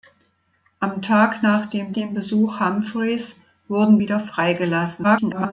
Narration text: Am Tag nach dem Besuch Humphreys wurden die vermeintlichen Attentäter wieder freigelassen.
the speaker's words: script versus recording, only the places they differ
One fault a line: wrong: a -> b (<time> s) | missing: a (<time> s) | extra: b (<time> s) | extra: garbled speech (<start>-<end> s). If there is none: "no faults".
extra: dem (1.9 s)
missing: die vermeintlichen Attentäter (4.0 s)
extra: garbled speech (5.0-5.5 s)